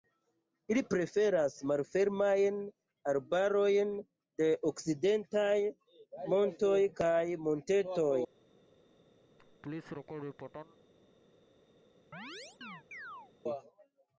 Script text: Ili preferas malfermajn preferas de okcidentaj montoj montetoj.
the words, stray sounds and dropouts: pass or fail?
fail